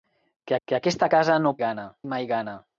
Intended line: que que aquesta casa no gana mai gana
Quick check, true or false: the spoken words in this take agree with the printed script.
true